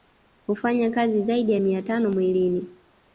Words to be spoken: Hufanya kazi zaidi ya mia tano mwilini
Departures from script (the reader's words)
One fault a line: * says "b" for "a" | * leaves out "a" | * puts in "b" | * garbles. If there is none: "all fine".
all fine